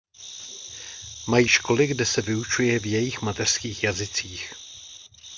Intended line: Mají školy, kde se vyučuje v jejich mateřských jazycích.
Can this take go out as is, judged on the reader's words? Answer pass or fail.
pass